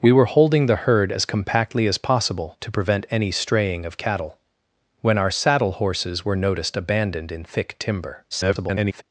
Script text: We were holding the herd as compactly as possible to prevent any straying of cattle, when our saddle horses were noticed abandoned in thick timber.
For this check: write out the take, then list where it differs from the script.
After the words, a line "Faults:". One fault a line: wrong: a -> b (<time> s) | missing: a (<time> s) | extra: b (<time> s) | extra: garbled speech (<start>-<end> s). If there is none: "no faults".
We were holding the herd as compactly as possible to prevent any straying of cattle, when our saddle horses were noticed abandoned in thick timber. [garbled]
Faults:
extra: garbled speech (8.3-9.0 s)